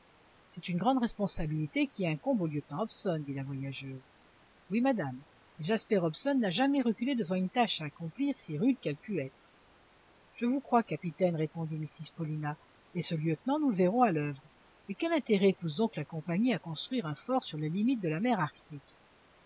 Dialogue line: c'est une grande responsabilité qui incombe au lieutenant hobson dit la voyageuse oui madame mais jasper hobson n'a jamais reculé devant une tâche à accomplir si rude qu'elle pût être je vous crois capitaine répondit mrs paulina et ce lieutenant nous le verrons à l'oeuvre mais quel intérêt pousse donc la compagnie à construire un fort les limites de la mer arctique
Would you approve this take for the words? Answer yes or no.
no